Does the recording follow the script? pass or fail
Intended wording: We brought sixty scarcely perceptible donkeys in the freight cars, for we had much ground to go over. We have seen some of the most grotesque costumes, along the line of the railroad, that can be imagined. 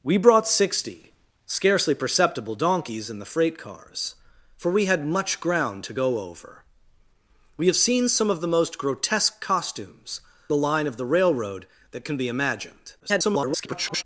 fail